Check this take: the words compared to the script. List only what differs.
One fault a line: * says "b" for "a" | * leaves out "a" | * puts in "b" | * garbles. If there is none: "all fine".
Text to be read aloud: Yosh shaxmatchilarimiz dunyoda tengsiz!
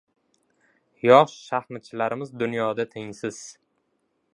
all fine